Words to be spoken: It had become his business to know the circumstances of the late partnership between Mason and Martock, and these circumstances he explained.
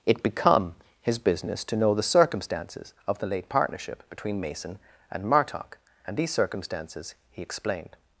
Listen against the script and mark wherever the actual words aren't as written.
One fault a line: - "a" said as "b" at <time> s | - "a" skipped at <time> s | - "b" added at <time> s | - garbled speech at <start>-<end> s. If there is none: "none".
- "had" skipped at 0.2 s